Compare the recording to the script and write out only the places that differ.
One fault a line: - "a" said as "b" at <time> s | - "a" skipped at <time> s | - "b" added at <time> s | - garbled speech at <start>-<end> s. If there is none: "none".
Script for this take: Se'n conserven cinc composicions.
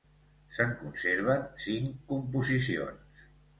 none